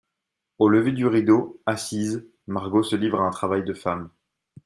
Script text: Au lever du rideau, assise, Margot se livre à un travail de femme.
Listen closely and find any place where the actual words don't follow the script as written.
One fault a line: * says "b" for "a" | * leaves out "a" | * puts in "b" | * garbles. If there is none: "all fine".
all fine